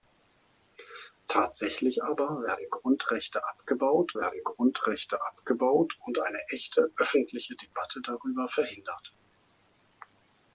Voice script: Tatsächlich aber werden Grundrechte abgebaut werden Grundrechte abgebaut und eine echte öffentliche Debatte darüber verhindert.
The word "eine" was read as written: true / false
true